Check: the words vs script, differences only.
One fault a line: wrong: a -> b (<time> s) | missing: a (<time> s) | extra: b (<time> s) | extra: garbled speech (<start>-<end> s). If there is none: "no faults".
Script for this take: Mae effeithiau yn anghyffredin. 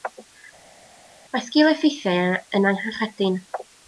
extra: sgil (1.5 s)